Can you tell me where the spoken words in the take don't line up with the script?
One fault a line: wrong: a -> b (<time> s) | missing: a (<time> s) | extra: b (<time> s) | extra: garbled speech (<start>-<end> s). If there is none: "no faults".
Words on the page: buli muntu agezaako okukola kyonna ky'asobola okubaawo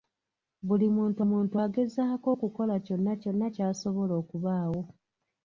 extra: muntu (1.3 s)
extra: kyonna (3.2 s)